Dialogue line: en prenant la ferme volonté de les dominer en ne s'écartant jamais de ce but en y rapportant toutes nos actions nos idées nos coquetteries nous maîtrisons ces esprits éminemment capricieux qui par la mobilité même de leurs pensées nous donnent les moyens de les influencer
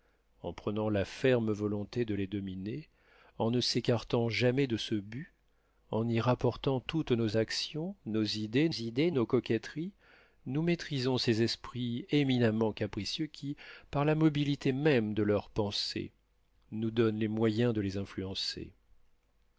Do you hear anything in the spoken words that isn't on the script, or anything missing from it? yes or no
yes